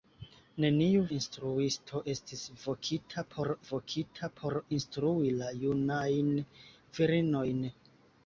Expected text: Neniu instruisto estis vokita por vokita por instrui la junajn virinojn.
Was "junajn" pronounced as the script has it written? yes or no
yes